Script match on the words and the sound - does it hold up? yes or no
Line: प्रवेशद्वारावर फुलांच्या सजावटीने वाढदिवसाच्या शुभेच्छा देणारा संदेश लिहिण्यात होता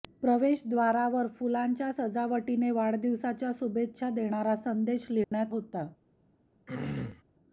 no